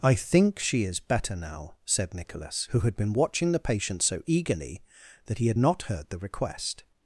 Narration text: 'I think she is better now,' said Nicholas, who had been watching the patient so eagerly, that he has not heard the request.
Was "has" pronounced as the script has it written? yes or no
no